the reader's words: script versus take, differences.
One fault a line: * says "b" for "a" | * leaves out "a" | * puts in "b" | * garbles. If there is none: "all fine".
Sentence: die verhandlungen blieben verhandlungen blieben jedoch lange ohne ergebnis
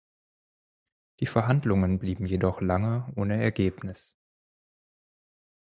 * leaves out "verhandlungen blieben"